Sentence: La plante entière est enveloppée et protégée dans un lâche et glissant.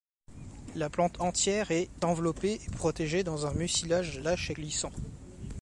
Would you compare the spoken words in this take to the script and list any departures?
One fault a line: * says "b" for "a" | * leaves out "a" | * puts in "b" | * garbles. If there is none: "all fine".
* puts in "mucilage"